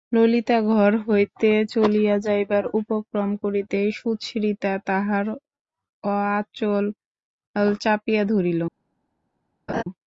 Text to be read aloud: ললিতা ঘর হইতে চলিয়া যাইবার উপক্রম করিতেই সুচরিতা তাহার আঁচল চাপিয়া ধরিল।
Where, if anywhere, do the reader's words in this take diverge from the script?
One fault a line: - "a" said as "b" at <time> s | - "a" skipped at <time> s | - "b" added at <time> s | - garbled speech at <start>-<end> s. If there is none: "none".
none